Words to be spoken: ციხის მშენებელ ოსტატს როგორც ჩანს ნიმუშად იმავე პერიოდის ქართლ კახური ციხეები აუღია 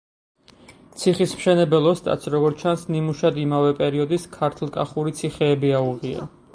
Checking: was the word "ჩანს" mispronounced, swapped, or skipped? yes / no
no